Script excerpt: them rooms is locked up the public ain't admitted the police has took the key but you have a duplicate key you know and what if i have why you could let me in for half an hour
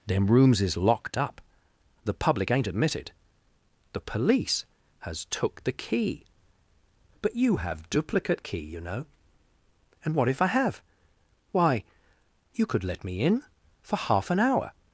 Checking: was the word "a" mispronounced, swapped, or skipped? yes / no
yes